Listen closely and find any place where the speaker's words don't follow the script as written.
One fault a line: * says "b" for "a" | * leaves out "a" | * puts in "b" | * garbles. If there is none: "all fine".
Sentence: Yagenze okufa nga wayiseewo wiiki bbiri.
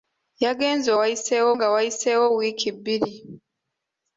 * says "wayiseewo" for "okufa"